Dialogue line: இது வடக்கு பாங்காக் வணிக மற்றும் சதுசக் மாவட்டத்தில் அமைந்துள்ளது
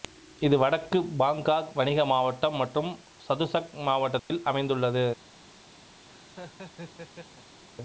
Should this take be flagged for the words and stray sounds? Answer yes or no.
yes